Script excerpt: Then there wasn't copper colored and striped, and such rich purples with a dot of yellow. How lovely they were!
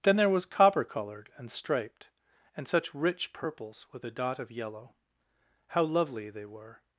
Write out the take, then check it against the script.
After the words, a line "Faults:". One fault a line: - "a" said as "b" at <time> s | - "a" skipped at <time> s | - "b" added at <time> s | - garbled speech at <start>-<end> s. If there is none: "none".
Then there was copper colored and striped, and such rich purples with a dot of yellow. How lovely they were!
Faults:
- "wasn't" said as "was" at 0.3 s